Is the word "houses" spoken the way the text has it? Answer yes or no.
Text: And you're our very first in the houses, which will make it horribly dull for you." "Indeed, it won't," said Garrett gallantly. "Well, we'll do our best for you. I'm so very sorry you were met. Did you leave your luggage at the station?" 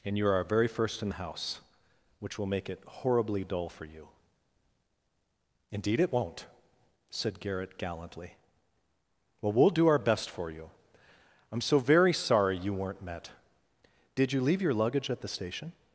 no